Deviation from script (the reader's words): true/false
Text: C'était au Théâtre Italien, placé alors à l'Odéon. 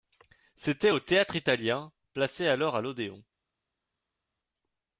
false